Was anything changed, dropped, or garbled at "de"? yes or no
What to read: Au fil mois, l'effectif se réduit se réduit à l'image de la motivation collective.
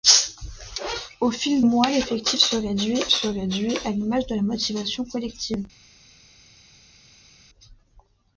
no